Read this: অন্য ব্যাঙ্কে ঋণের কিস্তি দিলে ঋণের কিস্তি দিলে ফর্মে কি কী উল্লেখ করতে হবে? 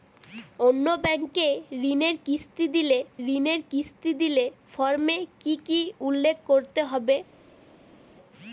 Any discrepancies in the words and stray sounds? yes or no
no